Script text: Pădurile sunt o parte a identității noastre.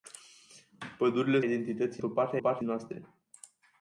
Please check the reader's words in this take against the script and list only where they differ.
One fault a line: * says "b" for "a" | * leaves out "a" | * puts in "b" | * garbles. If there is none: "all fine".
* says "identității" for "sunt"
* says "parte" for "identității"